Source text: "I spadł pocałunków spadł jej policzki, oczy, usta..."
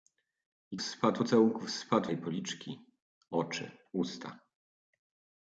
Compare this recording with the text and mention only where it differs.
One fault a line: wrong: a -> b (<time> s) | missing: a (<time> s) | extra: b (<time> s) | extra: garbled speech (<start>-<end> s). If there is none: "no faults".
no faults